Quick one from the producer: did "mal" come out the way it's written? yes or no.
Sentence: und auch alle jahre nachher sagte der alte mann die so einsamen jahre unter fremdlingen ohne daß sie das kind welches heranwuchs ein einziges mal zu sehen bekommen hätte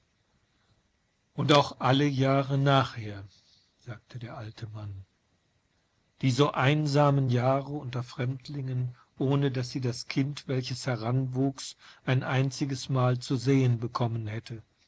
yes